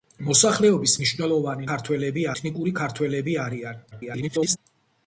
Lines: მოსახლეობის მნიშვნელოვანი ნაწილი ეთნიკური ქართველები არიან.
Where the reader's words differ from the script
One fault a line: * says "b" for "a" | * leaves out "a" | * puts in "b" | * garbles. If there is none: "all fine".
* says "ქართველები" for "ნაწილი"
* garbles